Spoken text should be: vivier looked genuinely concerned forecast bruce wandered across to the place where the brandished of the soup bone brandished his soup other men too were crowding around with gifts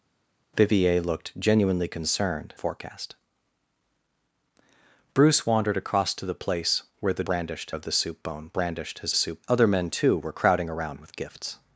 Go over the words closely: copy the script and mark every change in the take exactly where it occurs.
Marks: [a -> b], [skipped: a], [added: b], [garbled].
vivier looked genuinely concerned forecast bruce wandered across to the place where the brandished of the soup bone brandished his soup other men too were crowding around with gifts